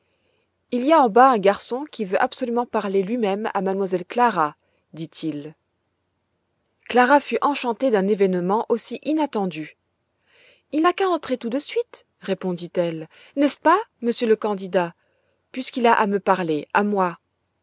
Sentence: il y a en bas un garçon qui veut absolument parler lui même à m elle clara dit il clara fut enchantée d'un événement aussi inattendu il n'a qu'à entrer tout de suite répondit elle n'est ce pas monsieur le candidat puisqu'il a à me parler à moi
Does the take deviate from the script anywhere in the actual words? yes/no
no